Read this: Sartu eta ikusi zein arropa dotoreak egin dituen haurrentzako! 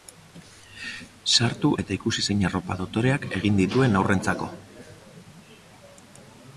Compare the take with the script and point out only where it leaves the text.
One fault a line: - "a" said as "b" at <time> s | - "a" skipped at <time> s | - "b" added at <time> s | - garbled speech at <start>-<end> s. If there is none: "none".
none